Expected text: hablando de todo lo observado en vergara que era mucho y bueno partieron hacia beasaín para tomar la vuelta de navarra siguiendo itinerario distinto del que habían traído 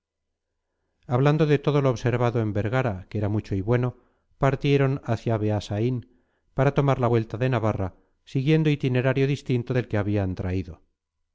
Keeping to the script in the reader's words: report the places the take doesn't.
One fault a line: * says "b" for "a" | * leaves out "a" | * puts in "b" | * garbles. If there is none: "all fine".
all fine